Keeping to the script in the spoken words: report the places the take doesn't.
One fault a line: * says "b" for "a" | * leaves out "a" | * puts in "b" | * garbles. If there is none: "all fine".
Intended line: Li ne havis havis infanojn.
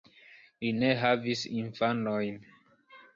* leaves out "havis"